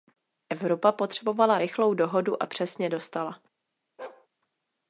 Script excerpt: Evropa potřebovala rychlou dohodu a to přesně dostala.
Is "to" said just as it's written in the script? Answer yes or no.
no